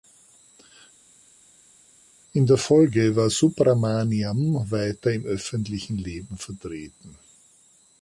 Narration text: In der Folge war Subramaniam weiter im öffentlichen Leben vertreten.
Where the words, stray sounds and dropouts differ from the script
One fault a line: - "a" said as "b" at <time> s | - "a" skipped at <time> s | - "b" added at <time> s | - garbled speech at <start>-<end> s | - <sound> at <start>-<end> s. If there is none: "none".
none